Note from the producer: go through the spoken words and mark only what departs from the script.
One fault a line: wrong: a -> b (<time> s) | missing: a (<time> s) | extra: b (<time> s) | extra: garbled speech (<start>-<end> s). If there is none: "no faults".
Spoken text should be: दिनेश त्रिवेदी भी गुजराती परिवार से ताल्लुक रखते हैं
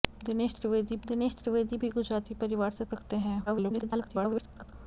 extra: दिनेश त्रिवेदी (1.0 s)
missing: ताल्लुक (2.8 s)
extra: garbled speech (3.5-4.7 s)